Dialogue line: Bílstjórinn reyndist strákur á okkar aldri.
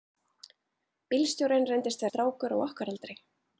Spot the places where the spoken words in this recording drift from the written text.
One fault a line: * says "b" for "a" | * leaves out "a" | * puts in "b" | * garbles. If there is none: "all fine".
all fine